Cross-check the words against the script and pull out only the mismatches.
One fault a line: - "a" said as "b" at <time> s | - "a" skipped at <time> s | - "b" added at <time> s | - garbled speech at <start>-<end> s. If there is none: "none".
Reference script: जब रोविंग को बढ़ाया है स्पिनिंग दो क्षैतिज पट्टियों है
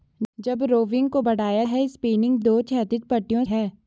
none